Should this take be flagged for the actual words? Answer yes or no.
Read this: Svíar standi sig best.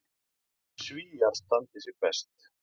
no